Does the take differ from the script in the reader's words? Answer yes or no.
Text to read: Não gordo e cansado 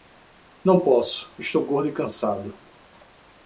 yes